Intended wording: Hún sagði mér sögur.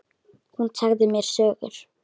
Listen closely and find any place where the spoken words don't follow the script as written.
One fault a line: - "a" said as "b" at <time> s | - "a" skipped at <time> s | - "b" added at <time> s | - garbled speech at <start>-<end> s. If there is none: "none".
none